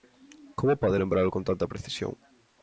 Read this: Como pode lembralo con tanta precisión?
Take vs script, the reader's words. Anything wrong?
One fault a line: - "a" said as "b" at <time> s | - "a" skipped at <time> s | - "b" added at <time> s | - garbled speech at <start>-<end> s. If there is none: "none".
none